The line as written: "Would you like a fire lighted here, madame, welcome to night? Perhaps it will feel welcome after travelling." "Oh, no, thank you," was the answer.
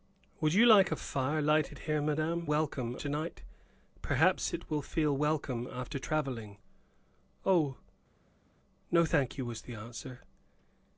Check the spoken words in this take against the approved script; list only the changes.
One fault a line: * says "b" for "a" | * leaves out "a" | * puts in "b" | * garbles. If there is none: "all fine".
all fine